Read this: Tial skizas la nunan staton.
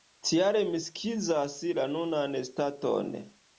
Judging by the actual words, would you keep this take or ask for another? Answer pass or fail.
fail